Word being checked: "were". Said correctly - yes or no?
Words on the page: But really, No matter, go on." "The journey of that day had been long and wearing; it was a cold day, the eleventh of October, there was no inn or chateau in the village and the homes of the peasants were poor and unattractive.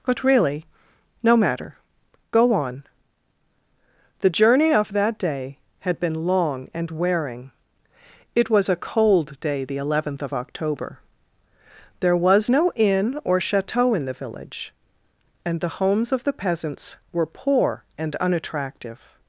yes